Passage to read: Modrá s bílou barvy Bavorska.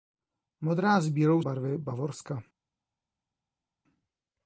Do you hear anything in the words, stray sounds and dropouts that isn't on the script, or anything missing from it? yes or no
no